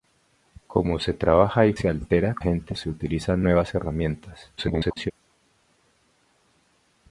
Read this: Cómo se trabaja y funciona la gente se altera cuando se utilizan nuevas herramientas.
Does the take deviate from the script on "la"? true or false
true